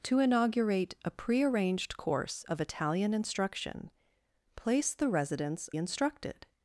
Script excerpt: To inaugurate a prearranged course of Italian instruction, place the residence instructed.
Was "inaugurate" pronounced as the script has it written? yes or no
yes